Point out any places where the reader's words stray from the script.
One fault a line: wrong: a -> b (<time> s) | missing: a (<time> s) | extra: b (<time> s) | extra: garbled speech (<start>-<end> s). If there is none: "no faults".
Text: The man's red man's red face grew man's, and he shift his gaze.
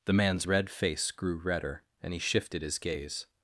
missing: man's red (0.7 s)
wrong: man's -> redder (1.4 s)
wrong: shift -> shifted (2.2 s)